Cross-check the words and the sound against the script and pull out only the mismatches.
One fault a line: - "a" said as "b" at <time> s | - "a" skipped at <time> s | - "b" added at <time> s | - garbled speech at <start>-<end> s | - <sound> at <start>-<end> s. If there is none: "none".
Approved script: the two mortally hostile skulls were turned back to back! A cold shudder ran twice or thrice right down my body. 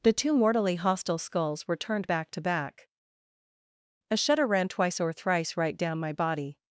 - "cold" skipped at 4.2 s